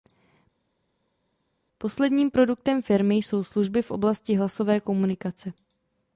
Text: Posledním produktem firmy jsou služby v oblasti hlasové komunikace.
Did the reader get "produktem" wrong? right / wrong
right